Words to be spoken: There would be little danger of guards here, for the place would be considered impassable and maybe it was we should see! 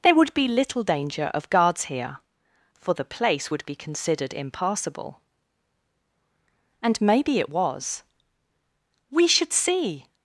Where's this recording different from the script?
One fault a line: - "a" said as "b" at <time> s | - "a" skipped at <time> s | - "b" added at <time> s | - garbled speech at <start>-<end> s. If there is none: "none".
none